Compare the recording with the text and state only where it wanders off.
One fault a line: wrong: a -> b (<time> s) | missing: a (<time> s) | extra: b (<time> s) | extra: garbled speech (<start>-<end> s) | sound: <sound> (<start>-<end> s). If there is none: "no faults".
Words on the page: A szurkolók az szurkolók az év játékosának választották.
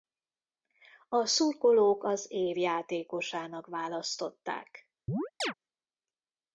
missing: szurkolók az (2.3 s)
sound: chirp (5.1-5.5 s)